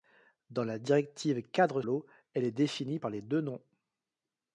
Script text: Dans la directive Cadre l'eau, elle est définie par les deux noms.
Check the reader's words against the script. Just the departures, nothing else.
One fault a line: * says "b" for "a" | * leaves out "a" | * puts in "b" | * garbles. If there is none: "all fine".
all fine